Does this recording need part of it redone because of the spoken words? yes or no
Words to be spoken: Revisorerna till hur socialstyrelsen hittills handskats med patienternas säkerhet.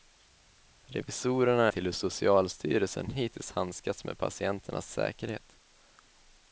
no